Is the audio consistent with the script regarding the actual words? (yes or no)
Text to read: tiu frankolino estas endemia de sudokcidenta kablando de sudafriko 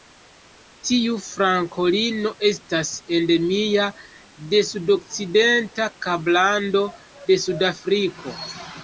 yes